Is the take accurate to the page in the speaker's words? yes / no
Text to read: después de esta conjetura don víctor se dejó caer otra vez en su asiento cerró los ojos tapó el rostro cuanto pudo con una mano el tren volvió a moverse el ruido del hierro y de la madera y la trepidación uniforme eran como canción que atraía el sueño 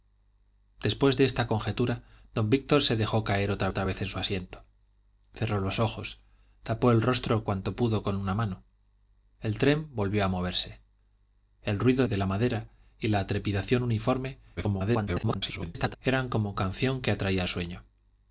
no